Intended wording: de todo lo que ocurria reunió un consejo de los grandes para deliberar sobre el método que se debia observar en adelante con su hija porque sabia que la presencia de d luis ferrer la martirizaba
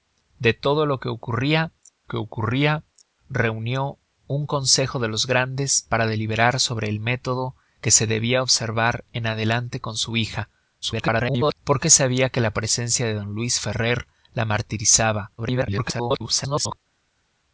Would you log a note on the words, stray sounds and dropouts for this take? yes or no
yes